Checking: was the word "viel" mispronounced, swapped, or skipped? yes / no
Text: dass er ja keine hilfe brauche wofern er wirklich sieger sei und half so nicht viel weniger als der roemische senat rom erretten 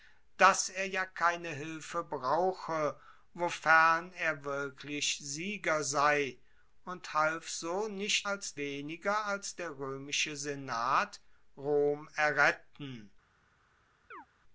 yes